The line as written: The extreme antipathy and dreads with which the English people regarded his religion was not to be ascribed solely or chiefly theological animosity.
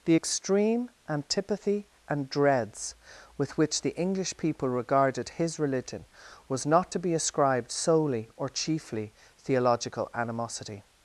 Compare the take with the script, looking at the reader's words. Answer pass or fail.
pass